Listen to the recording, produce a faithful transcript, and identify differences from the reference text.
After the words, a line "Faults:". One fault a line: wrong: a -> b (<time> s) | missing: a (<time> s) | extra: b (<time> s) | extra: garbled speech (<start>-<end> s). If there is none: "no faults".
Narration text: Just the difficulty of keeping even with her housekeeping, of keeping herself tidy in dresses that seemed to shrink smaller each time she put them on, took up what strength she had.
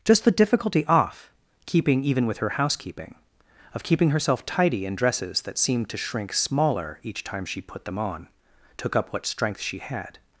Just the difficulty off keeping even with her housekeeping, of keeping herself tidy in dresses that seemed to shrink smaller each time she put them on, took up what strength she had.
Faults:
wrong: of -> off (0.8 s)